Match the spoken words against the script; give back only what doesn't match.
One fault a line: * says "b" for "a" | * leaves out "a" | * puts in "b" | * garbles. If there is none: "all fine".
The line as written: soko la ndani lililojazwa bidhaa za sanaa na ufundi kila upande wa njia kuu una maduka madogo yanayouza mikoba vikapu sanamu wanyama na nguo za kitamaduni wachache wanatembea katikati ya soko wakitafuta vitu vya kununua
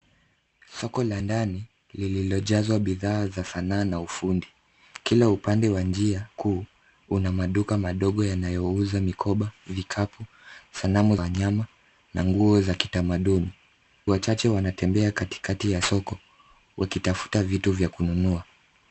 all fine